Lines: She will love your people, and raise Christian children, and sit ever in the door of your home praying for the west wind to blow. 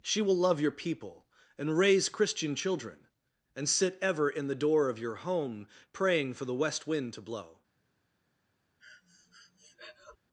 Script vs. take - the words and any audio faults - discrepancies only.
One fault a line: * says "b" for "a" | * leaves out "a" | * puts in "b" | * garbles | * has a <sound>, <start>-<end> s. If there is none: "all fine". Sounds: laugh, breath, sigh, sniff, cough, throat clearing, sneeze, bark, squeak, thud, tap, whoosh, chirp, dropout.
* has a breath, 8.8-10.2 s